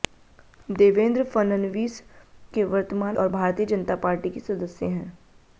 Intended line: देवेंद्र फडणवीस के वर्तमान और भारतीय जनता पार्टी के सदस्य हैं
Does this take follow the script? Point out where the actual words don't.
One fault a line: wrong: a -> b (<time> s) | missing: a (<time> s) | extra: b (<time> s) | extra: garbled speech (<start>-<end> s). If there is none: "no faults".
no faults